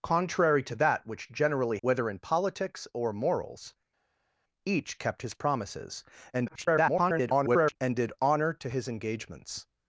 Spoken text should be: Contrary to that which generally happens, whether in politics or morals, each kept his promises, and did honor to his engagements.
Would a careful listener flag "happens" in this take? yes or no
yes